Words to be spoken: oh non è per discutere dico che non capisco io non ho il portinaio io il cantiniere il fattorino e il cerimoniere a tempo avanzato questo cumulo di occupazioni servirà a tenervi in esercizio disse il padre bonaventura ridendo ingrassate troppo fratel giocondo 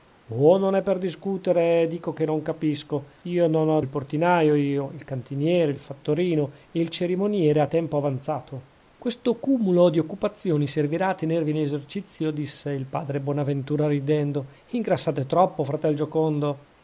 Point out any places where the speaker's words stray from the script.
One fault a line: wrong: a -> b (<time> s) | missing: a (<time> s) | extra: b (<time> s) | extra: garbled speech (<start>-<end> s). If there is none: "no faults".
no faults